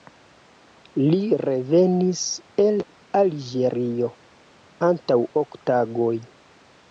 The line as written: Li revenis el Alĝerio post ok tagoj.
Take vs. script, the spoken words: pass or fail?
fail